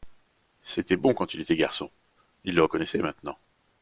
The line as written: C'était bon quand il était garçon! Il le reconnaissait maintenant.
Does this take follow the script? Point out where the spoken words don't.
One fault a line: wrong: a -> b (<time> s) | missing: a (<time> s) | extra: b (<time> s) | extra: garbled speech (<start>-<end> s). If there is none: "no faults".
no faults